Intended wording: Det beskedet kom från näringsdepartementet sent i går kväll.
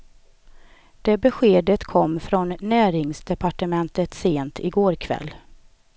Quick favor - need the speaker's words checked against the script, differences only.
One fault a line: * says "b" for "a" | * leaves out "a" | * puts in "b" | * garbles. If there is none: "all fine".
all fine